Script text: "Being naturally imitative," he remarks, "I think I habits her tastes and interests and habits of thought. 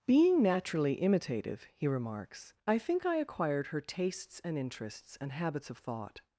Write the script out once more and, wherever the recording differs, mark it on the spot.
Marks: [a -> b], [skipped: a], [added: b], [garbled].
"Being naturally imitative," he remarks, "I think I [habits -> acquired] her tastes and interests and habits of thought.